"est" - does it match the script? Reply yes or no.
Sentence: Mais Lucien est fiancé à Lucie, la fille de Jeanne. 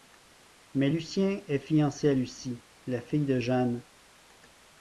yes